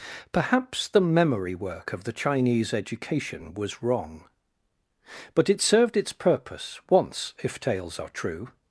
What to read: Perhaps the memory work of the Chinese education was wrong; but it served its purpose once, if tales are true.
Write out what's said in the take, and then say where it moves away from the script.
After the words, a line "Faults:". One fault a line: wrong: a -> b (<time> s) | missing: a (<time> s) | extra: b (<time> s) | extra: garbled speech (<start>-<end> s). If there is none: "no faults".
Perhaps the memory work of the Chinese education was wrong; but it served its purpose once, if tales are true.
Faults:
no faults